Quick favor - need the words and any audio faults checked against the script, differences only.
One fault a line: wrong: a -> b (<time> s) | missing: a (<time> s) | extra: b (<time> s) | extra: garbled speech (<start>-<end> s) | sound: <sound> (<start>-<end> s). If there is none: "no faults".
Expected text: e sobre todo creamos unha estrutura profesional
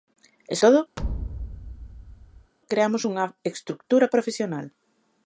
missing: sobre (0.6 s)
sound: thud (1.0-2.5 s)